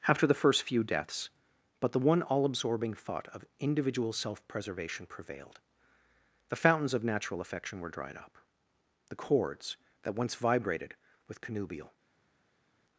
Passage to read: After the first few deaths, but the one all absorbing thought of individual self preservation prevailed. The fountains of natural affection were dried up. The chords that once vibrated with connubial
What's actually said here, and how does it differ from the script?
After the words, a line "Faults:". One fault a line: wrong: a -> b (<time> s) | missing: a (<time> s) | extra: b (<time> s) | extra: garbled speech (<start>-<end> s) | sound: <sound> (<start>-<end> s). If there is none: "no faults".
After the first few deaths, but the one all absorbing thought of individual self preservation prevailed. The fountains of natural affection were dried up. The chords that once vibrated with connubial
Faults:
no faults